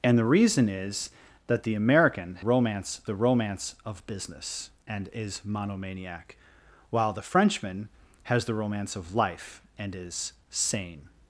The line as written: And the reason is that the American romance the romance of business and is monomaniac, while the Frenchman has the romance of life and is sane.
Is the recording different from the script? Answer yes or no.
no